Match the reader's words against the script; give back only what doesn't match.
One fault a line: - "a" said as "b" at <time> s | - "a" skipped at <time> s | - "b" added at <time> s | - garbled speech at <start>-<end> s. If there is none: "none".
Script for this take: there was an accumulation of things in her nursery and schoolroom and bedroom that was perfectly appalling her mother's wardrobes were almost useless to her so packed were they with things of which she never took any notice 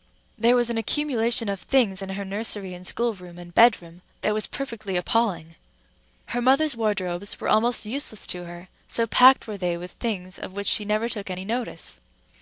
none